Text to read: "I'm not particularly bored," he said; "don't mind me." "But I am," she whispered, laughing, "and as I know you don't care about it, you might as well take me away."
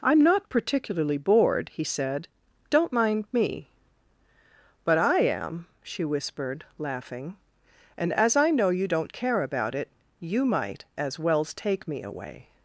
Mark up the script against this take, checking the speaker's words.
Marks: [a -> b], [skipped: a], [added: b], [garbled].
"I'm not particularly bored," he said; "don't mind me." "But I am," she whispered, laughing, "and as I know you don't care about it, you might as [well -> wells] take me away."